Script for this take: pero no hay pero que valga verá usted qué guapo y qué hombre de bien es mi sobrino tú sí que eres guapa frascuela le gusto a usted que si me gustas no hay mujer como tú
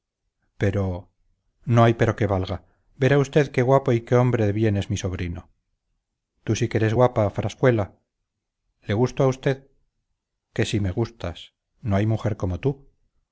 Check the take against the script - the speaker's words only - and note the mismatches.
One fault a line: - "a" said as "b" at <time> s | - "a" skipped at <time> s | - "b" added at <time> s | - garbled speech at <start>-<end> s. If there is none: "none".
none